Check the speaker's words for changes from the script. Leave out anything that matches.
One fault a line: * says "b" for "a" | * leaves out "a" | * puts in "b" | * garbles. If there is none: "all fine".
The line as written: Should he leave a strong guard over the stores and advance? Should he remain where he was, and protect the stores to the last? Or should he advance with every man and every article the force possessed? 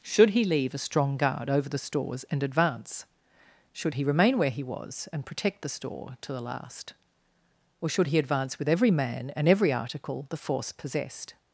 * says "store" for "stores"